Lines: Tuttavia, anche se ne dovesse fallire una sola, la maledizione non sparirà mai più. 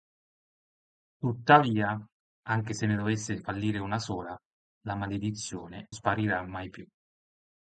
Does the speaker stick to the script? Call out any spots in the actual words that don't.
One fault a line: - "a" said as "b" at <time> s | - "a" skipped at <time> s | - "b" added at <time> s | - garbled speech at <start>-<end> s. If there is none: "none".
- "non" skipped at 5.9 s